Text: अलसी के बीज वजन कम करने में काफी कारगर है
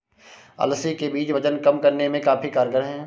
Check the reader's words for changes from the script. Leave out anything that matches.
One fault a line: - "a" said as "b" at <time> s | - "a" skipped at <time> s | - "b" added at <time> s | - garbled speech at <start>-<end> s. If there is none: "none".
none